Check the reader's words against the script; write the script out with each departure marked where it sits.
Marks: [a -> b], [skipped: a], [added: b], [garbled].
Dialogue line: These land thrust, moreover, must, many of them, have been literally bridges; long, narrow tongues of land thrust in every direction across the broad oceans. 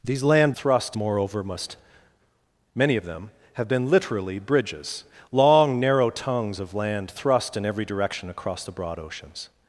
These land thrust, moreover, must, many of them, have been literally bridges; long, narrow tongues of land thrust in every direction across the broad oceans.